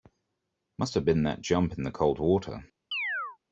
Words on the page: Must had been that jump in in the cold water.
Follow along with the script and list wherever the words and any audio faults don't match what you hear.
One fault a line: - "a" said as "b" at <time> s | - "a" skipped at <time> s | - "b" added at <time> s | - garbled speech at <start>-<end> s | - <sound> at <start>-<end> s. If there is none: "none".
- "had" said as "have" at 0.9 s
- "in" skipped at 1.8 s
- chirp at 2.9-3.4 s